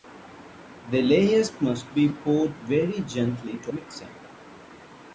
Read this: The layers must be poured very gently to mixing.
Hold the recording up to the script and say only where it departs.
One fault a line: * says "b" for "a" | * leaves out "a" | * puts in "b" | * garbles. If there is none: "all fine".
all fine